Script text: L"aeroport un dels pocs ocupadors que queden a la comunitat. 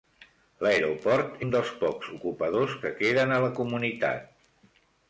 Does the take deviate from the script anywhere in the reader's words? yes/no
no